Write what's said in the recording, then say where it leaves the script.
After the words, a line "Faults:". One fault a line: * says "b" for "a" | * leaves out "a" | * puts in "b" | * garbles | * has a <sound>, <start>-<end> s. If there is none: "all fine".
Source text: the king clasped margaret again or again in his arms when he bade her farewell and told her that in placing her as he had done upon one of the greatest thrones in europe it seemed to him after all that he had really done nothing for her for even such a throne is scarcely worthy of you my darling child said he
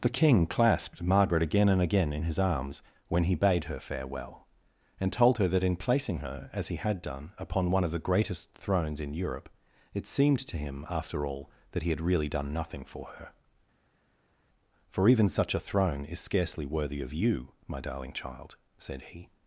the king clasped margaret again and again in his arms when he bade her farewell and told her that in placing her as he had done upon one of the greatest thrones in europe it seemed to him after all that he had really done nothing for her for even such a throne is scarcely worthy of you my darling child said he
Faults:
* says "and" for "or"